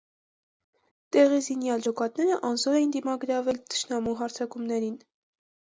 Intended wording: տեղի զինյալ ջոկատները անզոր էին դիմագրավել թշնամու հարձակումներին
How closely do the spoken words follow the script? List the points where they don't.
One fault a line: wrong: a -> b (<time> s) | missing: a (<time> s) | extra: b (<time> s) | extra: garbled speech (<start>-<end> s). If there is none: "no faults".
no faults